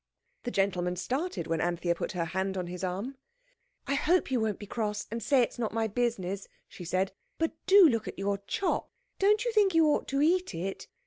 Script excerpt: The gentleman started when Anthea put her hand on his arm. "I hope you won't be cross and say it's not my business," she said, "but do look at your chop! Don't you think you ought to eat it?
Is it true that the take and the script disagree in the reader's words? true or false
false